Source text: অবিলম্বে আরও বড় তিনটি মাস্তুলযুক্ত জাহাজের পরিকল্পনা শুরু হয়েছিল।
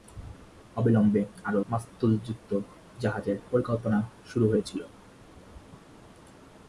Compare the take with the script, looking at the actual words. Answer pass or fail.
fail